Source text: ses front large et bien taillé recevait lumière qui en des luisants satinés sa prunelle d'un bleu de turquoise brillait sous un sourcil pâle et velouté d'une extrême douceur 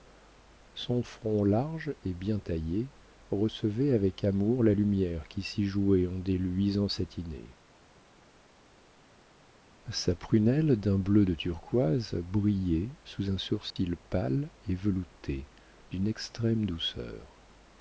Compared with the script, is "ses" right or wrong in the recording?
wrong